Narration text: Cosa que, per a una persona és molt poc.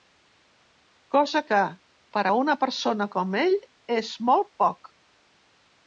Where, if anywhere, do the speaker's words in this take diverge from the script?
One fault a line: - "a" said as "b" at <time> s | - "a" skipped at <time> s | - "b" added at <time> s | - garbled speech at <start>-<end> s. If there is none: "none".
- "com ell" added at 3.2 s